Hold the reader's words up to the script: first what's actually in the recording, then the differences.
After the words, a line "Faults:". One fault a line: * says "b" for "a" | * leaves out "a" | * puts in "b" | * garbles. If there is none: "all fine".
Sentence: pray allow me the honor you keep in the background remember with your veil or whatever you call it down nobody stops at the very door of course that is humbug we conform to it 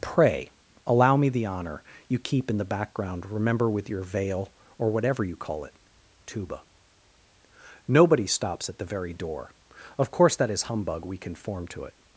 pray allow me the honor you keep in the background remember with your veil or whatever you call it tuba nobody stops at the very door of course that is humbug we conform to it
Faults:
* says "tuba" for "down"